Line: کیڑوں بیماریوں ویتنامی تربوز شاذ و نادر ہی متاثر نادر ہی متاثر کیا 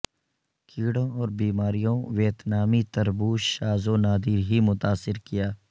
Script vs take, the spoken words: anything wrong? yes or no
yes